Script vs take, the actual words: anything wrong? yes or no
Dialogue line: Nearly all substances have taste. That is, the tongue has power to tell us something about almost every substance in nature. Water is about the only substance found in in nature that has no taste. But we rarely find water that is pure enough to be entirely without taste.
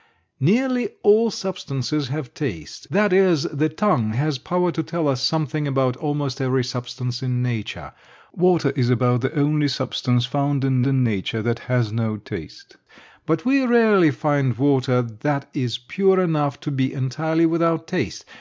no